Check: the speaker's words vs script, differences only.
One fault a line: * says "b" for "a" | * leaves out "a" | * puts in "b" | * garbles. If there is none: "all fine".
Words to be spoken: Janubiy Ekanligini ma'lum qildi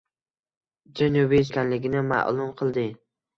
all fine